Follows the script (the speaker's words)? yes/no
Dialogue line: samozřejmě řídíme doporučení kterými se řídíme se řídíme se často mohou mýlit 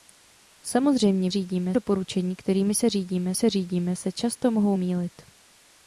yes